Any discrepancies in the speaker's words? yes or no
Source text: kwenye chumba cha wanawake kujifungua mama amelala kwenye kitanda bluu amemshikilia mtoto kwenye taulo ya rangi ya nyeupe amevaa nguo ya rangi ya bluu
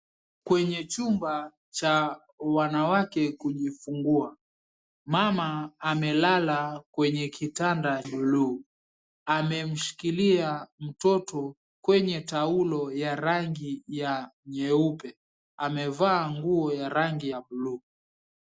no